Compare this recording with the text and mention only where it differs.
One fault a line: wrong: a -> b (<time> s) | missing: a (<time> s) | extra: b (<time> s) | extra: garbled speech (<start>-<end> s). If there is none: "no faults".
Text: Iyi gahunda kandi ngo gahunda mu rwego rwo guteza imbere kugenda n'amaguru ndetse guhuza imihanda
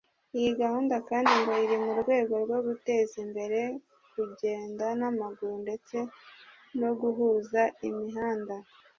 wrong: gahunda -> iri (1.6 s)
extra: no (6.8 s)